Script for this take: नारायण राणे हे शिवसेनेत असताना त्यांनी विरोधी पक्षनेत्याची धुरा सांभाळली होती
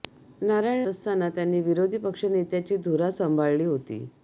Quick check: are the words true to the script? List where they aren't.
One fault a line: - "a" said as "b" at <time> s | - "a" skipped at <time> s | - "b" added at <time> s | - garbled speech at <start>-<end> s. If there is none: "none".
- "राणे हे शिवसेनेत" skipped at 0.8 s